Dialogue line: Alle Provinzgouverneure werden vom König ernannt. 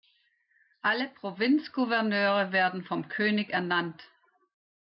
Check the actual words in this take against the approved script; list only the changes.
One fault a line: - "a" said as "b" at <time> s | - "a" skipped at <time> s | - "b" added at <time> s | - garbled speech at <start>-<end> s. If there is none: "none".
none